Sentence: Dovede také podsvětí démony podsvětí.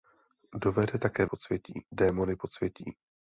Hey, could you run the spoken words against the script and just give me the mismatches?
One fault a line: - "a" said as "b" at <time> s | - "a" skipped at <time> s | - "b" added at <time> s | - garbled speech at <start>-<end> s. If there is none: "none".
none